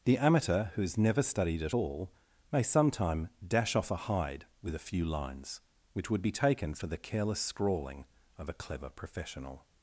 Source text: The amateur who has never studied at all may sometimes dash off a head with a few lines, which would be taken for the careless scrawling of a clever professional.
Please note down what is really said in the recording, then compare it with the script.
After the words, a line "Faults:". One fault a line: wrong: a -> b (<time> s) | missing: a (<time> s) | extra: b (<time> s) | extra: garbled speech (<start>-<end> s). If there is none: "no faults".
The amateur who has never studied at all may sometime dash off a hide with a few lines, which would be taken for the careless scrawling of a clever professional.
Faults:
wrong: sometimes -> sometime (2.6 s)
wrong: head -> hide (4.0 s)